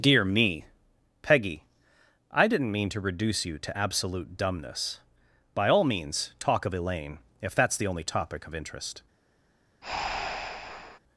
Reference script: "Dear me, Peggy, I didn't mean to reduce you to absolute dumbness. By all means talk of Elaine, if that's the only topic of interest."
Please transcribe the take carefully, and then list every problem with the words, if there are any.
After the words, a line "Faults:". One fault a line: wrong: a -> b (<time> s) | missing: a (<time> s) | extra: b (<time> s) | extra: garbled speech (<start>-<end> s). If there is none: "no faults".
"Dear me, Peggy, I didn't mean to reduce you to absolute dumbness. By all means talk of Elaine, if that's the only topic of interest."
Faults:
no faults